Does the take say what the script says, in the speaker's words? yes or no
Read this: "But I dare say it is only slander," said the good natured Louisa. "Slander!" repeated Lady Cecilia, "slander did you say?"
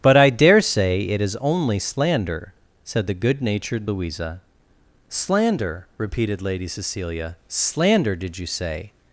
yes